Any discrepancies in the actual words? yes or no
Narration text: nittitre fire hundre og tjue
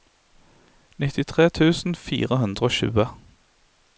yes